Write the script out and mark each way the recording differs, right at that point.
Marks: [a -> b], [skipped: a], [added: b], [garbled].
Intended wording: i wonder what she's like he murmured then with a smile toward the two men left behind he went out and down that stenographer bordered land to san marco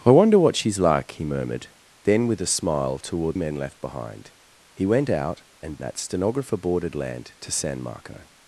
i wonder what she's like he murmured then with a smile toward [skipped: the two] men left behind he went out and [skipped: down] that stenographer bordered land to san marco